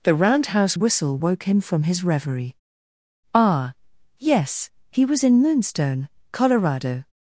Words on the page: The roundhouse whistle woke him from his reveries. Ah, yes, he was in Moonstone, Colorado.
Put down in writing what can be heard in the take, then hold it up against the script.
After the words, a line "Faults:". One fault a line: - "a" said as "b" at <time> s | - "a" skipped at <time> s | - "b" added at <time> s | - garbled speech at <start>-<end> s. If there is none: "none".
The roundhouse whistle woke him from his reverie. Ah, yes, he was in Moonstone, Colorado.
Faults:
- "reveries" said as "reverie" at 2.0 s